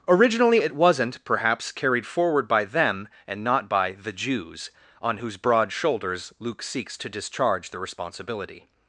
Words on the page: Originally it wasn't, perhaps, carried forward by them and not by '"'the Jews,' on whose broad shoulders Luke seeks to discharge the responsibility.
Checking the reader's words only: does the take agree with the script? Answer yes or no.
yes